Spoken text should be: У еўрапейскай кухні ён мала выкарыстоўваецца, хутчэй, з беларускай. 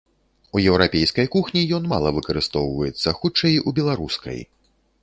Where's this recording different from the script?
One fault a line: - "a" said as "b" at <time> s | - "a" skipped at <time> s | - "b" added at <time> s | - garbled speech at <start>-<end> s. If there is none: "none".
- "з" said as "у" at 3.7 s